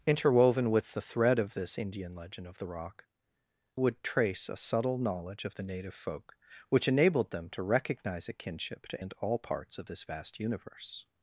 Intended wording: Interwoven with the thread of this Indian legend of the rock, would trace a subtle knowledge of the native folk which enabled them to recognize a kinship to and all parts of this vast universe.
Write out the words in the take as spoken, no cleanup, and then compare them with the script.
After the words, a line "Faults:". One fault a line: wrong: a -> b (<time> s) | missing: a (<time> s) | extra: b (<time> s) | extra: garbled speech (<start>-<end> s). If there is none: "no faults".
Interwoven with the thread of this Indian legend of the rock, would trace a subtle knowledge of the native folk which enabled them to recognize a kinship to and all parts of this vast universe.
Faults:
no faults